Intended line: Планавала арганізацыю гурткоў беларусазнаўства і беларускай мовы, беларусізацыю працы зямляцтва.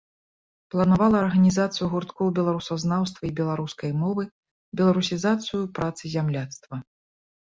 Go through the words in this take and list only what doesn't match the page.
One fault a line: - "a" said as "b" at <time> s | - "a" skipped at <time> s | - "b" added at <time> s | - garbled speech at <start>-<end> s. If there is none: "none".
none